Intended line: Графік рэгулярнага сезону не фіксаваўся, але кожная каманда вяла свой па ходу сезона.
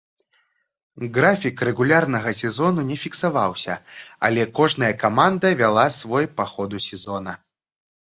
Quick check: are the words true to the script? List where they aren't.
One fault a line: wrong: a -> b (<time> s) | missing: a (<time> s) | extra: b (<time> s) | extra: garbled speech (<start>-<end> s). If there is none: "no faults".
no faults